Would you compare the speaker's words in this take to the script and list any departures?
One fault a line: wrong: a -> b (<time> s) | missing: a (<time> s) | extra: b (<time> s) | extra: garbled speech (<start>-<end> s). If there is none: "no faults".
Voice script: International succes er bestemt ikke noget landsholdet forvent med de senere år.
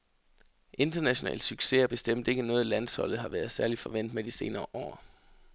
extra: har været særlig (3.2 s)